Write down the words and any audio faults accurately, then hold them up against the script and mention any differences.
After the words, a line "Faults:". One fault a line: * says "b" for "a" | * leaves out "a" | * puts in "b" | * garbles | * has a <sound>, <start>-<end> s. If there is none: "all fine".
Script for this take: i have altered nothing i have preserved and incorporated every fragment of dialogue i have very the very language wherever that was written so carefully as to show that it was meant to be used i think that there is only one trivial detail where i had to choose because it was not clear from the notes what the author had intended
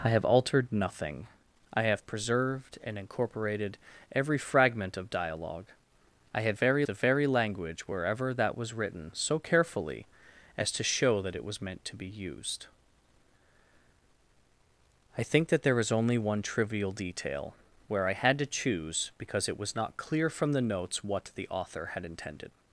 i have altered nothing i have preserved and incorporated every fragment of dialogue i have very the very language wherever that was written so carefully as to show that it was meant to be used i think that there is only one trivial detail where i had to choose because it was not clear from the notes what the author had intended
Faults:
all fine